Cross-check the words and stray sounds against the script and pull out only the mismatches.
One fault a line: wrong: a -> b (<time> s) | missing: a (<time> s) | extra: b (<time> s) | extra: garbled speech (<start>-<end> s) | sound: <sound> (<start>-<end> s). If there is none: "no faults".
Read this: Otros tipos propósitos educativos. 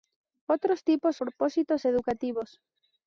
no faults